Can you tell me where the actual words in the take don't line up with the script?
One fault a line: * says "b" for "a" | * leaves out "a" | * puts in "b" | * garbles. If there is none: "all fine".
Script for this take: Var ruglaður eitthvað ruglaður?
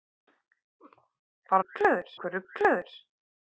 all fine